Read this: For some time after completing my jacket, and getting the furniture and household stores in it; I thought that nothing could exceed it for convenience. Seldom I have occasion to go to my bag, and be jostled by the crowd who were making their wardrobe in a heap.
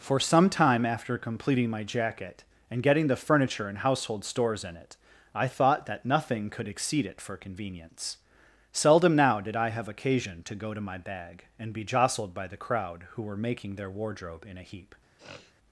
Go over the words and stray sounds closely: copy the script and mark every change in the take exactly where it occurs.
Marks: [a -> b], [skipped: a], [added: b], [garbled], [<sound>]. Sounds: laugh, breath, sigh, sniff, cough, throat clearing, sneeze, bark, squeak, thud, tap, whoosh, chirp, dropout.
For some time after completing my jacket, and getting the furniture and household stores in it; I thought that nothing could exceed it for convenience. Seldom [added: now did] I have occasion to go to my bag, and be jostled by the crowd who were making their wardrobe in a heap. [sniff]